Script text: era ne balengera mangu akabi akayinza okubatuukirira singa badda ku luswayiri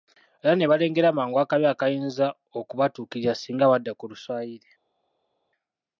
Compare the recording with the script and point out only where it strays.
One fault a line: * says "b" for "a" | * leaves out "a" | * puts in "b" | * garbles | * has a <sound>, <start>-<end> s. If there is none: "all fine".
all fine